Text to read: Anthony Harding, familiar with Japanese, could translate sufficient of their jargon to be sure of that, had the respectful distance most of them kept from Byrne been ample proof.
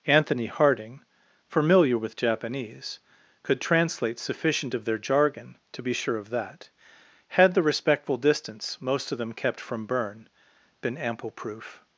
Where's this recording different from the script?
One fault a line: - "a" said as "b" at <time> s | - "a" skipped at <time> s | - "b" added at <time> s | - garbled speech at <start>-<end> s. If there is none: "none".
none